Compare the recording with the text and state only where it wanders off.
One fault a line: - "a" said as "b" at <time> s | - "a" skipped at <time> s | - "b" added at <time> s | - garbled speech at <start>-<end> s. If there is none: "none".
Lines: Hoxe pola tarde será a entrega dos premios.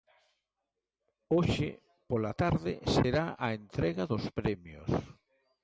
none